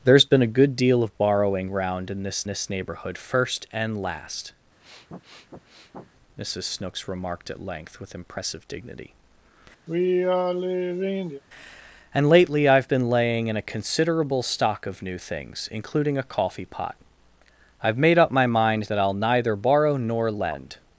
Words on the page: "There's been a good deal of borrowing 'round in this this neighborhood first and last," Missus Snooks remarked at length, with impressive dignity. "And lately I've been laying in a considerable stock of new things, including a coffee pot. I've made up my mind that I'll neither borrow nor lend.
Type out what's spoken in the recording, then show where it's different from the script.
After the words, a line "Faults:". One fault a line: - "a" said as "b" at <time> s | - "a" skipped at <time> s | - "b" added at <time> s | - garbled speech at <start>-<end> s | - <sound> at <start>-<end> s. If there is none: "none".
"There's been a good deal of borrowing 'round in this this neighborhood first and last," Missus Snooks remarked at length, with impressive dignity. "And lately I've been laying in a considerable stock of new things, including a coffee pot. I've made up my mind that I'll neither borrow nor lend.
Faults:
- sniff at 4.8-6.1 s
- sigh at 9.9-11.4 s